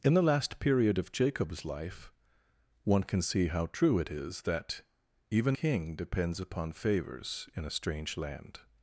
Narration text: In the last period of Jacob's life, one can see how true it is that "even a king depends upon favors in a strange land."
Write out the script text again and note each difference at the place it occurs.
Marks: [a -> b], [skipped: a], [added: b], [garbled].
In the last period of Jacob's life, one can see how true it is that "even [skipped: a] king depends upon favors in a strange land."